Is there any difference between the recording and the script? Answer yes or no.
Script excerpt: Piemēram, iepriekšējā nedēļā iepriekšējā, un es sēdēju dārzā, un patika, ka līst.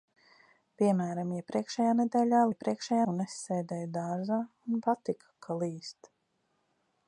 no